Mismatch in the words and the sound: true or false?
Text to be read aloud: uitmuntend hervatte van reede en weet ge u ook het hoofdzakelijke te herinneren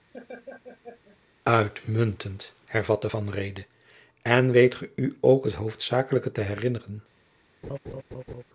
true